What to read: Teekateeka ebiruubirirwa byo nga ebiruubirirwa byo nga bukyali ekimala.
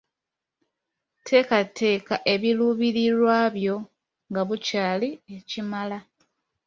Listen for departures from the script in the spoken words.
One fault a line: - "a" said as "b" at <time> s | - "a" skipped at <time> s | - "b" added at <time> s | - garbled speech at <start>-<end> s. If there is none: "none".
- "ebiruubirirwa byo nga" skipped at 4.4 s